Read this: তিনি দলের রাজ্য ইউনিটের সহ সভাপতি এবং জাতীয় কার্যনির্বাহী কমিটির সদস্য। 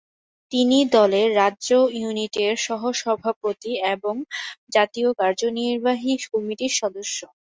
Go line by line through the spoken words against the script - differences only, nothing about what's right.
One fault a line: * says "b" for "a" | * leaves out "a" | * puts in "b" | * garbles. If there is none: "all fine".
all fine